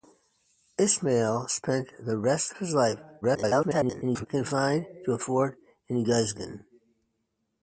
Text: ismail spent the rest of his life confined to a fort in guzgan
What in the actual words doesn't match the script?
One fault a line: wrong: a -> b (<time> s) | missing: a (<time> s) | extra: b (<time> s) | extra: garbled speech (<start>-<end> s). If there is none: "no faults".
extra: garbled speech (3.2-4.3 s)